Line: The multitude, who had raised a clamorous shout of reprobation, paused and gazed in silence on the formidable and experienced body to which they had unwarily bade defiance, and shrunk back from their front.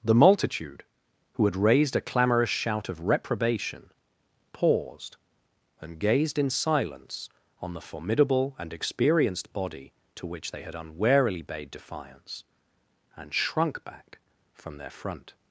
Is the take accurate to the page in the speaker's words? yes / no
yes